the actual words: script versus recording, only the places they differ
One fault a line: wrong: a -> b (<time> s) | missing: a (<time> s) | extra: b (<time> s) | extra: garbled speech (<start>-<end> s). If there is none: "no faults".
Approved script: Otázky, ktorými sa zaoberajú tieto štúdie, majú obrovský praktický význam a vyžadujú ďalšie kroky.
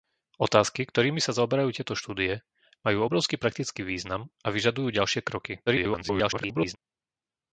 extra: garbled speech (5.7-6.8 s)